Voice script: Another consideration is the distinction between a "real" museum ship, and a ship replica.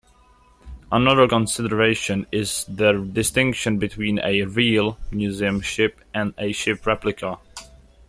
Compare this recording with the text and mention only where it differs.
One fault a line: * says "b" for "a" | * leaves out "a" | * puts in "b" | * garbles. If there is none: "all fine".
all fine